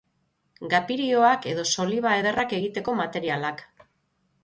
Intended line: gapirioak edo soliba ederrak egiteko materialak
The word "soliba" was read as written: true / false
true